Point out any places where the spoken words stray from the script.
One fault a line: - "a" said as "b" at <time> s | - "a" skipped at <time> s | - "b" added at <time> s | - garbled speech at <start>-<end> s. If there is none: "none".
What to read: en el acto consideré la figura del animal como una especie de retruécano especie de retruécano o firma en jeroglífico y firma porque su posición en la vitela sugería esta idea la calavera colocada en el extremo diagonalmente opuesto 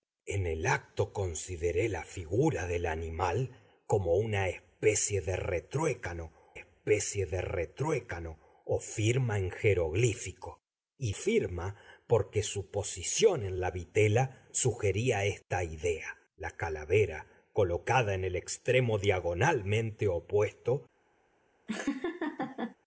none